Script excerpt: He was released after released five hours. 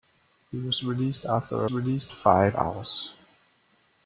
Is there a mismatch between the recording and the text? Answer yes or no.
no